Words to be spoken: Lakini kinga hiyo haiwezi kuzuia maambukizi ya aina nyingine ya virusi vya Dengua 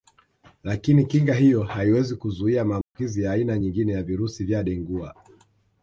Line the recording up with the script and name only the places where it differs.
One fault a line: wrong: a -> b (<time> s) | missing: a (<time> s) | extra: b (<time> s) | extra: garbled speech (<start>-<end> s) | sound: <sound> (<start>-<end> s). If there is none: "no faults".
sound: dropout (2.8-3.0 s)